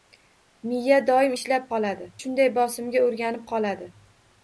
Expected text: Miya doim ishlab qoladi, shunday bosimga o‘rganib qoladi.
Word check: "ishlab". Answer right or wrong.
right